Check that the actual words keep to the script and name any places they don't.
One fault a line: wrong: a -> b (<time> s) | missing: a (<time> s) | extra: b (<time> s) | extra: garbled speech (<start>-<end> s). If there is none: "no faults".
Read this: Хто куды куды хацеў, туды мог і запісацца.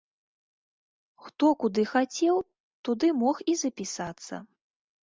missing: куды (1.8 s)